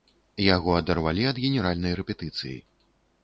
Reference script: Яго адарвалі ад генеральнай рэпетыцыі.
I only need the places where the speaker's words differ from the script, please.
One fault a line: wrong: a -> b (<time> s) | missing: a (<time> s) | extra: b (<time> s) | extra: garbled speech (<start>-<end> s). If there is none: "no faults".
no faults